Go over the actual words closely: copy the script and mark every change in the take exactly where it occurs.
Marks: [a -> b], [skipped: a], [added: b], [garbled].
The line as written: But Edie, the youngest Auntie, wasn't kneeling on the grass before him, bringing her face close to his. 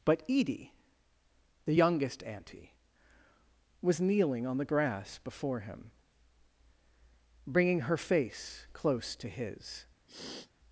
But Edie, the youngest Auntie, [wasn't -> was] kneeling on the grass before him, bringing her face close to his.